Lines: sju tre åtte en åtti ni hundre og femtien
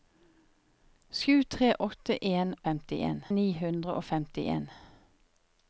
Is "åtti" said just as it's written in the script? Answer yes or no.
no